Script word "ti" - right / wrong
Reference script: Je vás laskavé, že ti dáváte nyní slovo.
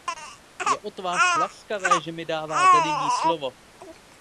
wrong